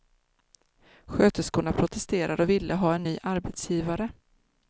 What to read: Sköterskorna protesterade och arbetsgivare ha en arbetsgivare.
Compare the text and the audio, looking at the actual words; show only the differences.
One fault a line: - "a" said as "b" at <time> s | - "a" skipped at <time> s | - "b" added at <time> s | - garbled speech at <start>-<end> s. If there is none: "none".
- "arbetsgivare" said as "ville" at 2.5 s
- "ny" added at 3.0 s